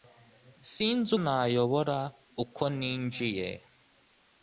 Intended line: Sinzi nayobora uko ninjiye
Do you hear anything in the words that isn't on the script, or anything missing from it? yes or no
no